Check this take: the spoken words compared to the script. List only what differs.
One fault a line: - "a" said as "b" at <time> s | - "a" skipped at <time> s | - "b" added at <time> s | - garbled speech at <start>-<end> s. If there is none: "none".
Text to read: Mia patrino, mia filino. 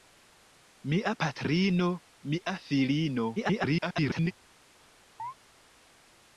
- garbled speech at 3.4-4.3 s